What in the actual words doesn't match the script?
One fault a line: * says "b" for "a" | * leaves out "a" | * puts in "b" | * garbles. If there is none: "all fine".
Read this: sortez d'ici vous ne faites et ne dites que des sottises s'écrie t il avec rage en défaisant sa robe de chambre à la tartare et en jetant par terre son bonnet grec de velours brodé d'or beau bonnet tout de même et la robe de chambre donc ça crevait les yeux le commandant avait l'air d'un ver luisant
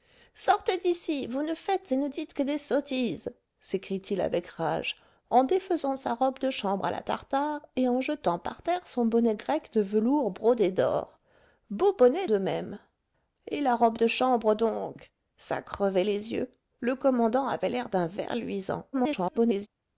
* leaves out "tout"
* garbles